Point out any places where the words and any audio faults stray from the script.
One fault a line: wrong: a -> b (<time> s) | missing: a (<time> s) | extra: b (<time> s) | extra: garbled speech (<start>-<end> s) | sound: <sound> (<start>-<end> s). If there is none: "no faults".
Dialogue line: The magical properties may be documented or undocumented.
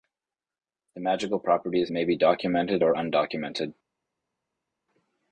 no faults